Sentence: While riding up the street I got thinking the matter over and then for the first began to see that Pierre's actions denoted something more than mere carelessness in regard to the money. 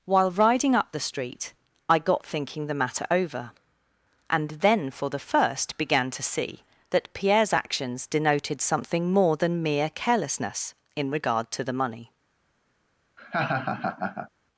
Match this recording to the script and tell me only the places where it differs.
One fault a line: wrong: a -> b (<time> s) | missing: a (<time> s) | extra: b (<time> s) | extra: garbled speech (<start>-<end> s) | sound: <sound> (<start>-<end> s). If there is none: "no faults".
sound: laugh (13.2-14.3 s)